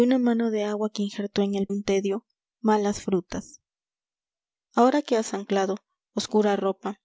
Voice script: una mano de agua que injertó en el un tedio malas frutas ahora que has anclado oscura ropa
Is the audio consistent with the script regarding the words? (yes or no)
yes